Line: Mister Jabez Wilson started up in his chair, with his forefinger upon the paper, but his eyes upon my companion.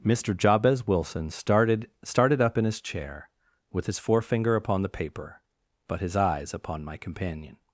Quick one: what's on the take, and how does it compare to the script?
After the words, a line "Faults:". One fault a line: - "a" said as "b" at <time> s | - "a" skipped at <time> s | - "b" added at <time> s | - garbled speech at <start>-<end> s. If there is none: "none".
Mister Jabez Wilson started started up in his chair, with his forefinger upon the paper, but his eyes upon my companion.
Faults:
- "started" added at 2.0 s